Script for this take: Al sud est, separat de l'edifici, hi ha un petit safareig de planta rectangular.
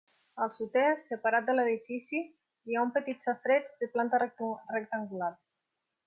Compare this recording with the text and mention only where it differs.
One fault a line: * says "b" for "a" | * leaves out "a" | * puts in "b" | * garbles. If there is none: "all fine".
all fine